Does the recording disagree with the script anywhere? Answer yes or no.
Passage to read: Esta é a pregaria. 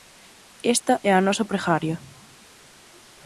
yes